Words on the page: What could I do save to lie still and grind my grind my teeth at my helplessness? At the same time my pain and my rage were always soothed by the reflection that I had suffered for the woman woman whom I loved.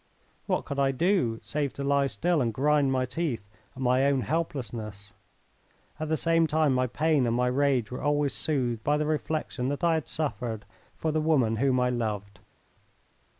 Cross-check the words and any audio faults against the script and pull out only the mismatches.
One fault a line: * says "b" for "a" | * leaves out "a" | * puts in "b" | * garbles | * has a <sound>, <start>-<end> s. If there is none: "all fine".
* leaves out "grind my"
* puts in "own"
* leaves out "woman"